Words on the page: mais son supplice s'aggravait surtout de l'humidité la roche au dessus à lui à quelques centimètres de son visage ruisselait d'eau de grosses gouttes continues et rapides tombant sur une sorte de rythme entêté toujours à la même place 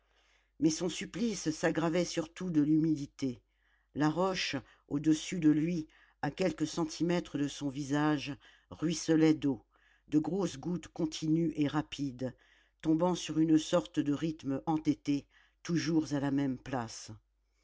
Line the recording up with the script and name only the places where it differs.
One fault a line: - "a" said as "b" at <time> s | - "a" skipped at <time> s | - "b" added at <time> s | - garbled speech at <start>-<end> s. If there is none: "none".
- "à" said as "de" at 5.4 s